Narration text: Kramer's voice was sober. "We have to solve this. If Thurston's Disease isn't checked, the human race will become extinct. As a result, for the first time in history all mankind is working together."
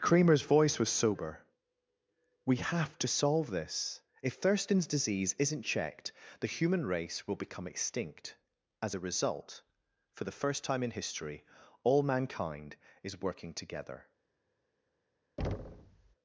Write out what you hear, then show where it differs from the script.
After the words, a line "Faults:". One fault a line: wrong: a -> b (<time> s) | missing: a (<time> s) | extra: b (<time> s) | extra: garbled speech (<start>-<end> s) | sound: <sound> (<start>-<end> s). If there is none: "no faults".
Kramer's voice was sober. "We have to solve this. If Thurston's Disease isn't checked, the human race will become extinct. As a result, for the first time in history all mankind is working together."
Faults:
sound: thud (15.4-16.1 s)